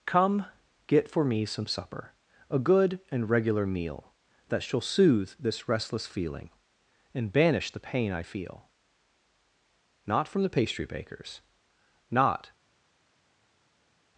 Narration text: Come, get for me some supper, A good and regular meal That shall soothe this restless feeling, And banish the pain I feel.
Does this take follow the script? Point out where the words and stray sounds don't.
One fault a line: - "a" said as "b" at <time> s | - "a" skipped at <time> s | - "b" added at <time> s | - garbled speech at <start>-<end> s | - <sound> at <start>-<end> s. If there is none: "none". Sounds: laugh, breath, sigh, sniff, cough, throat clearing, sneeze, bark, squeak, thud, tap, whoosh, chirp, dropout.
- "Not from the pastry bakers Not" added at 10.1 s